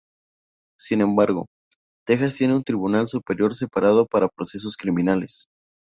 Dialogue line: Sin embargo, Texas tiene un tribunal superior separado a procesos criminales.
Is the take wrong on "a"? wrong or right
wrong